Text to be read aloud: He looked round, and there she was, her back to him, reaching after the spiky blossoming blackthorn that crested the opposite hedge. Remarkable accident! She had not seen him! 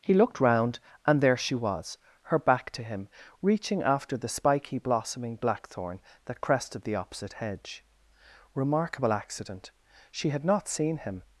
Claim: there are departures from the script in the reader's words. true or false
false